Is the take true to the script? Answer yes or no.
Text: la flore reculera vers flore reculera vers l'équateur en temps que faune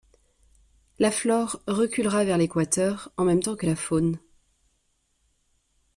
no